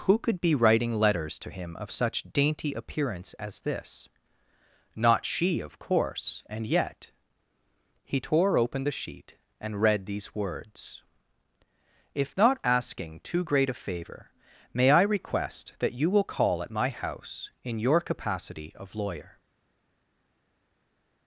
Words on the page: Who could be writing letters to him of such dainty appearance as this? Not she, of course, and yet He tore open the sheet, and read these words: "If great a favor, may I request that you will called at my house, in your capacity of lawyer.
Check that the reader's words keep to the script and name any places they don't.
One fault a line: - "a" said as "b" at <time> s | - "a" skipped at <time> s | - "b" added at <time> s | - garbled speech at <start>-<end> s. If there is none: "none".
- "not asking too" added at 12.4 s
- "called" said as "call" at 16.2 s